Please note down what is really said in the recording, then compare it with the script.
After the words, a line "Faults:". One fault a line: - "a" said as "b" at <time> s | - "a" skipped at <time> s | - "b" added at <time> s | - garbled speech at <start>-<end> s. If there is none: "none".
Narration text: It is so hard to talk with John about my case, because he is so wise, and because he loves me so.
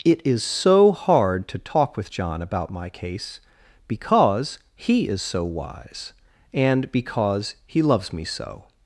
It is so hard to talk with John about my case, because he is so wise, and because he loves me so.
Faults:
none